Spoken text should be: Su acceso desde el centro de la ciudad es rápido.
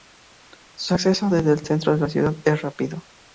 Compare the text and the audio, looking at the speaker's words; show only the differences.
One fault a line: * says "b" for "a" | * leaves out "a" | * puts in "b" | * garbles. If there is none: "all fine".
all fine